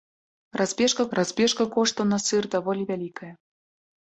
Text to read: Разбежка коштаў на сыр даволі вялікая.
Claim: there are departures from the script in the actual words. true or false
true